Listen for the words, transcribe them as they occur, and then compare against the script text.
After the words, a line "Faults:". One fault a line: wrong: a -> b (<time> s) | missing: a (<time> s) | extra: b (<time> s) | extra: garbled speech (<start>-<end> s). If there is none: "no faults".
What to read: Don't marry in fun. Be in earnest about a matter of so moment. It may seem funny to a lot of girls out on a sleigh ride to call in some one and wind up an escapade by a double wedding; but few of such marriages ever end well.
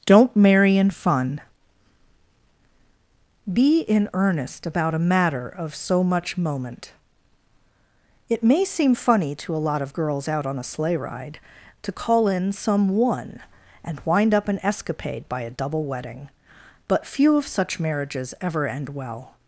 Don't marry in fun. Be in earnest about a matter of so much moment. It may seem funny to a lot of girls out on a sleigh ride to call in some one and wind up an escapade by a double wedding; but few of such marriages ever end well.
Faults:
extra: much (6.0 s)